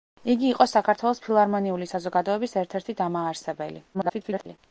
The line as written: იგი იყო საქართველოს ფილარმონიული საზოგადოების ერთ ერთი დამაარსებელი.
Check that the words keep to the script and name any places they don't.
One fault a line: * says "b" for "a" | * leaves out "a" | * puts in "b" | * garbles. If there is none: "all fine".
* garbles